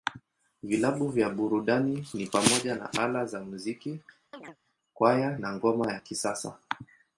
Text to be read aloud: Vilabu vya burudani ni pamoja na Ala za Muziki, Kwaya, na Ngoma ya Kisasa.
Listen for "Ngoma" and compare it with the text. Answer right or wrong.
right